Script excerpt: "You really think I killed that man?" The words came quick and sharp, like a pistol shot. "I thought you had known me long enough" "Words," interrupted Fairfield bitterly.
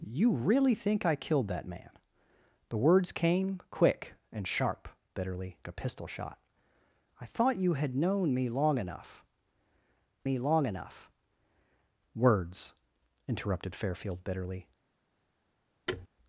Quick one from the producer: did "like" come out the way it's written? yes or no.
no